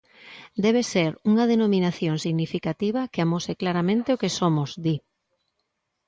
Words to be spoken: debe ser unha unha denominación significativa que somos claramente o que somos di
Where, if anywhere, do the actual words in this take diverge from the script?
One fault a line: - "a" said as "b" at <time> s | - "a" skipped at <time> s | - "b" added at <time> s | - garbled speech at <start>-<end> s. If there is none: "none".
- "unha" skipped at 1.4 s
- "somos" said as "amose" at 3.2 s